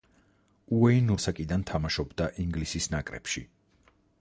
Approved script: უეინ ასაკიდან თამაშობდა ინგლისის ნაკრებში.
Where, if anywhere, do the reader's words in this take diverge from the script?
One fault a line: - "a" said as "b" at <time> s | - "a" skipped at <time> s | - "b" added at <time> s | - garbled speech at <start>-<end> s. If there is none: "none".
none